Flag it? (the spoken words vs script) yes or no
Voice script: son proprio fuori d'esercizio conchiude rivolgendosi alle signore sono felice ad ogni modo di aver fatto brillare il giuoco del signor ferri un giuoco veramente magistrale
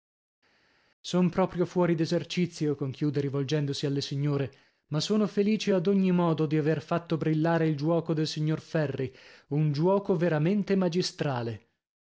yes